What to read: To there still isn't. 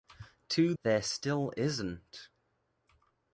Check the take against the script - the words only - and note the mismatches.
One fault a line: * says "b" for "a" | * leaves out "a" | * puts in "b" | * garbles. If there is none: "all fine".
all fine